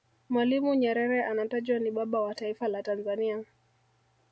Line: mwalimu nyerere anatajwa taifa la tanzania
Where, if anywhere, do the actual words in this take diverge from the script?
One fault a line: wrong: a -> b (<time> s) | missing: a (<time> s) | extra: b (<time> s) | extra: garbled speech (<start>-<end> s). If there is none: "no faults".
extra: ni baba wa (1.8 s)